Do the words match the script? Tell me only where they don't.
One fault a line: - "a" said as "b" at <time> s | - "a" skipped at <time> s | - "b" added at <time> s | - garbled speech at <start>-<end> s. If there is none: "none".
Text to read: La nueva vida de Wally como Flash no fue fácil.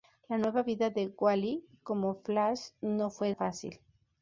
none